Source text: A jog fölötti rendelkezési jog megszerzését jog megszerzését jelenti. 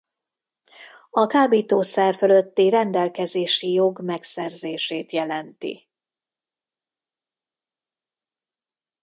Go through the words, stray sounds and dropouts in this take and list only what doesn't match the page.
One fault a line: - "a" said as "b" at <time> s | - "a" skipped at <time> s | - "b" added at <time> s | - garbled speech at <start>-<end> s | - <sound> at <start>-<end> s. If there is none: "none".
- "jog" said as "kábítószer" at 1.2 s
- "jog megszerzését" skipped at 5.1 s